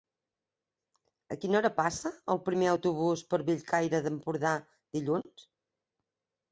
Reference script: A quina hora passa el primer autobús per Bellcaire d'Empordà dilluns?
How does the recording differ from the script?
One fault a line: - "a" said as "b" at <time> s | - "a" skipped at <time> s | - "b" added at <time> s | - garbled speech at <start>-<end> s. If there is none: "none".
none